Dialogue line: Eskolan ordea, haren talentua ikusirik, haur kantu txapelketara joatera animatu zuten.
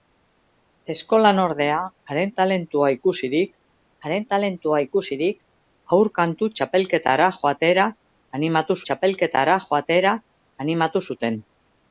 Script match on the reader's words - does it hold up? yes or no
no